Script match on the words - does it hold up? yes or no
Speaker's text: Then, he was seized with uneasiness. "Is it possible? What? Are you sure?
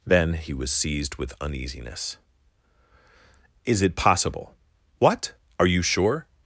yes